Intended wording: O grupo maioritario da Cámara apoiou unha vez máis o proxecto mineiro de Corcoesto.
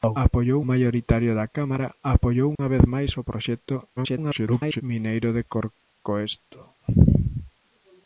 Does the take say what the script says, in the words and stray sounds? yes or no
no